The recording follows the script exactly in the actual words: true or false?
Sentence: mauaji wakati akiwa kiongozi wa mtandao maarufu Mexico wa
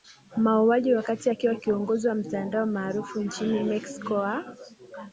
false